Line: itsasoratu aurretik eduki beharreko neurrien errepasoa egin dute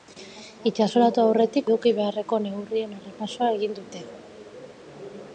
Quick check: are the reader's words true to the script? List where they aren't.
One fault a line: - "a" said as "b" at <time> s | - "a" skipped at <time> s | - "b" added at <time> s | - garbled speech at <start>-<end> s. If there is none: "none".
none